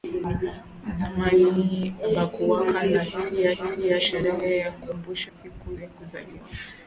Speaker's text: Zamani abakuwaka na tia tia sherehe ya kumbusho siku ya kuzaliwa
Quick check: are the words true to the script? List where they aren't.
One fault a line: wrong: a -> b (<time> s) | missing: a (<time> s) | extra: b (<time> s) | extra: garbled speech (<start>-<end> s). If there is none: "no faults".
no faults